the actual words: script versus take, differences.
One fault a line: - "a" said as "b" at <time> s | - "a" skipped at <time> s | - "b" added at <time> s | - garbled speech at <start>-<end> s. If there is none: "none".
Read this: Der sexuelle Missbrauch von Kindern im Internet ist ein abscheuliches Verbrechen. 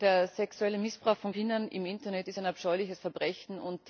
none